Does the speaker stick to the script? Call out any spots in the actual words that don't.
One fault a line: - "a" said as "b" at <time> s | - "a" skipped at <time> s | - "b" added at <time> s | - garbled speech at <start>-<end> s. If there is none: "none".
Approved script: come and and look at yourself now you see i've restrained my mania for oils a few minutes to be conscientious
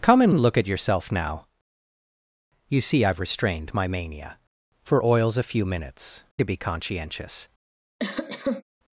none